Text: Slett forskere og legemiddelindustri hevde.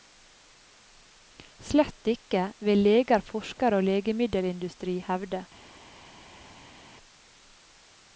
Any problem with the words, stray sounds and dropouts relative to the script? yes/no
yes